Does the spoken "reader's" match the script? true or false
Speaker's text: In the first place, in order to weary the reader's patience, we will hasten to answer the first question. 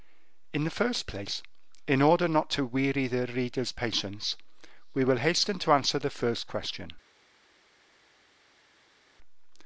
true